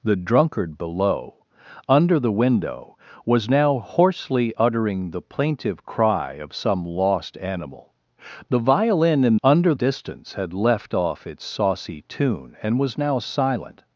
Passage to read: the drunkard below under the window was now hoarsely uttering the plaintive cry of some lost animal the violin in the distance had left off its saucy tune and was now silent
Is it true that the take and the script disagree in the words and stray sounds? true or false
true